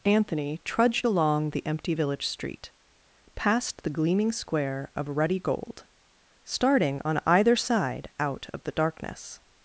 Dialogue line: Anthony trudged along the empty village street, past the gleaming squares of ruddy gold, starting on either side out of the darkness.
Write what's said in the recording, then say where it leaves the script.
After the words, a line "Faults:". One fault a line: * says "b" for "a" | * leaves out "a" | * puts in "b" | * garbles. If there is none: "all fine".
Anthony trudged along the empty village street, past the gleaming square of ruddy gold, starting on either side out of the darkness.
Faults:
* says "square" for "squares"